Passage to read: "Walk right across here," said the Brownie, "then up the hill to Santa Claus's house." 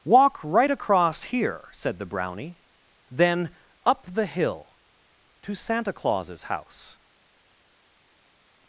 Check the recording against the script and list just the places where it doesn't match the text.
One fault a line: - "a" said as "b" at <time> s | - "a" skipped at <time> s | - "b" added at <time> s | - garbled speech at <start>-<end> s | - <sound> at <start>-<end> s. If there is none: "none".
none